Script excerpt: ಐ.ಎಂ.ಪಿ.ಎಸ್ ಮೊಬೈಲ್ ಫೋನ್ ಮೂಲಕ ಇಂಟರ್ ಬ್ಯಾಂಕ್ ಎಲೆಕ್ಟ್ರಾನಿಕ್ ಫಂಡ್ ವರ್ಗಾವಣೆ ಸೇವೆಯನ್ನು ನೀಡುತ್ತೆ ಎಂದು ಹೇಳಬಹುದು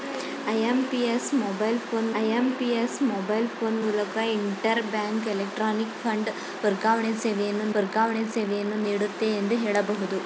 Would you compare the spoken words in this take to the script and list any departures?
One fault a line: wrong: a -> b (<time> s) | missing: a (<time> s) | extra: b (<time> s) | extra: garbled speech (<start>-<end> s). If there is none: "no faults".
extra: ಐ.ಎಂ.ಪಿ.ಎಸ್ ಮೊಬೈಲ್ ಫೋನ್ (2.2 s)
extra: ವರ್ಗಾವಣೆ ಸೇವೆಯನ್ನು (7.7 s)